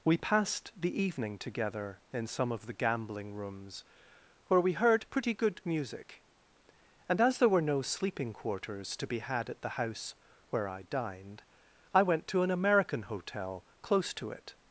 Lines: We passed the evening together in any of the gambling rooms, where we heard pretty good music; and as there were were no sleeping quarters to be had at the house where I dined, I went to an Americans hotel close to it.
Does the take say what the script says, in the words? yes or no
no